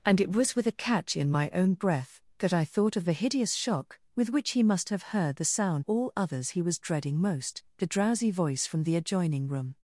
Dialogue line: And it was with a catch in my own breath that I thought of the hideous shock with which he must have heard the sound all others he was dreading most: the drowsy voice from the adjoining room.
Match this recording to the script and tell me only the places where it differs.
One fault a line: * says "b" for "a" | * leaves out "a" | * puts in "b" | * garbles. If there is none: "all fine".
all fine